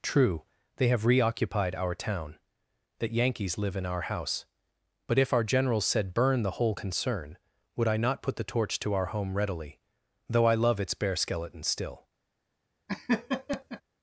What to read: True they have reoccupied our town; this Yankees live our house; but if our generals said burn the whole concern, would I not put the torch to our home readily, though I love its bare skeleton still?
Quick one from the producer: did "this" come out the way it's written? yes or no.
no